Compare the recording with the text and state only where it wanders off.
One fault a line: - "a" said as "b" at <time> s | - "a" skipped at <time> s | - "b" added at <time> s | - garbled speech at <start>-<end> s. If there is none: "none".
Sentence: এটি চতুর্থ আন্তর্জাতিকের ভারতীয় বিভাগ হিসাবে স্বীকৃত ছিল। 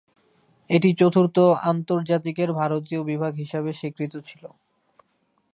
none